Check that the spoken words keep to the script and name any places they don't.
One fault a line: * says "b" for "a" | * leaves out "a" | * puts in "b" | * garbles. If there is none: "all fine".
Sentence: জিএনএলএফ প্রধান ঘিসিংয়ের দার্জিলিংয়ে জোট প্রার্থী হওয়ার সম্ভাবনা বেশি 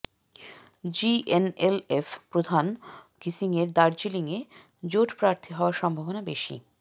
all fine